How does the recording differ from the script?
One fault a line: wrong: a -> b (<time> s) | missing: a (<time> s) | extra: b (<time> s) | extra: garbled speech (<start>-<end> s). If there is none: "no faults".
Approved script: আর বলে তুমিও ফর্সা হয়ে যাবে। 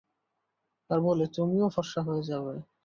no faults